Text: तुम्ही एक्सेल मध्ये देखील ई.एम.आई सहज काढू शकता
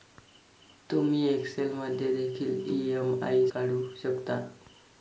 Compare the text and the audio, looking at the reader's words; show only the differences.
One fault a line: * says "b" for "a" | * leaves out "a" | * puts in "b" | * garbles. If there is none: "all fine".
* leaves out "सहज"